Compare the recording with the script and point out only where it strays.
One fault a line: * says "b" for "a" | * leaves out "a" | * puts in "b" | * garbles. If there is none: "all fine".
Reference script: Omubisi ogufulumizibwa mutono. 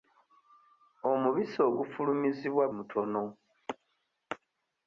all fine